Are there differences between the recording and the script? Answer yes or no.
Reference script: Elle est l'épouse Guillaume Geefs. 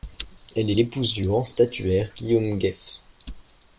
yes